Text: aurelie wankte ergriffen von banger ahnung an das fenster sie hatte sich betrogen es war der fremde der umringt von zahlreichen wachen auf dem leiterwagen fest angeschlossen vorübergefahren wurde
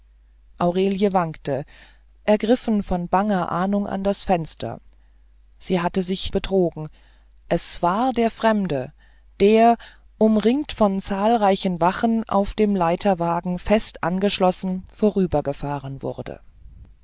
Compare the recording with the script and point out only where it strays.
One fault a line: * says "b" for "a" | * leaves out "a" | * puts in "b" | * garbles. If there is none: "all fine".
all fine